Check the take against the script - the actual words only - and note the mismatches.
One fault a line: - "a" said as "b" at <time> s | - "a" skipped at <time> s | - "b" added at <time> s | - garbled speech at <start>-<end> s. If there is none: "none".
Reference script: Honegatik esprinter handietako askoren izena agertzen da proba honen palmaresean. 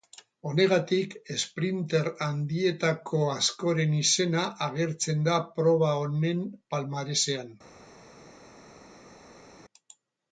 none